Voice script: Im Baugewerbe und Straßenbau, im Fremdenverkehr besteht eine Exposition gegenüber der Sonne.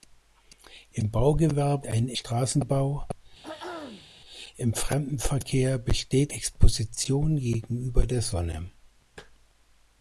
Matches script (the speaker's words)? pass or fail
fail